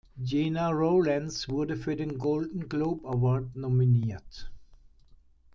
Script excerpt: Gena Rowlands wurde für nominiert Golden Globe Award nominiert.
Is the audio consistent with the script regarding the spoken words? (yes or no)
no